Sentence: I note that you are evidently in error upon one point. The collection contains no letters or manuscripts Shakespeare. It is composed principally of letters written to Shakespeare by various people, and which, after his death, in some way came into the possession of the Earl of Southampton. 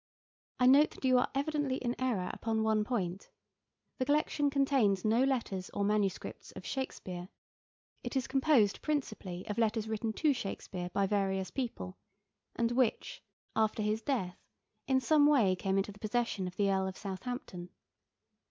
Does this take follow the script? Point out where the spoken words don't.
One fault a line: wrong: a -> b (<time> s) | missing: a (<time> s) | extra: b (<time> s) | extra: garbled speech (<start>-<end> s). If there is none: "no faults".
extra: of (6.5 s)